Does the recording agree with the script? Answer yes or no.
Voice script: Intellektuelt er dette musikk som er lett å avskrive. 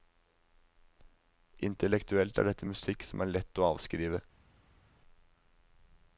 yes